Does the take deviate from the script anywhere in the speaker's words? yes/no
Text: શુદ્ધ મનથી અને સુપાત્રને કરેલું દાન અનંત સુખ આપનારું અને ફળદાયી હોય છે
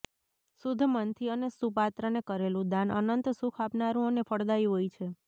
no